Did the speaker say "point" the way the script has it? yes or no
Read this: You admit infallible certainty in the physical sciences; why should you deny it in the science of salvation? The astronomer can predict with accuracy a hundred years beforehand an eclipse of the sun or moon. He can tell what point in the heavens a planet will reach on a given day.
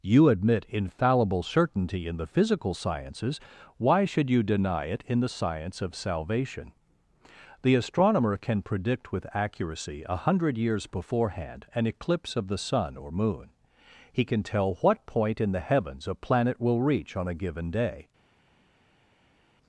yes